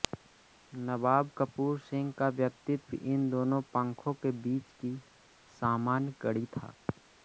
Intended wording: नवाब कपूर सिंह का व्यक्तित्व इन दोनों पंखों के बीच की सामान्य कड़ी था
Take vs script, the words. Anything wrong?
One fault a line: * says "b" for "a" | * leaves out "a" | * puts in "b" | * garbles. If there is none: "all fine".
all fine